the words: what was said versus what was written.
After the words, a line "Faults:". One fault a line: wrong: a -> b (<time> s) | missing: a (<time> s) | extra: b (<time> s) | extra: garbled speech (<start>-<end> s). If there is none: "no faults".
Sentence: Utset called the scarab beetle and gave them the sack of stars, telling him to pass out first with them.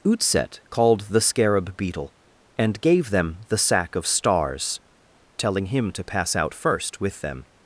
Utset called the scarab beetle and gave them the sack of stars, telling him to pass out first with them.
Faults:
no faults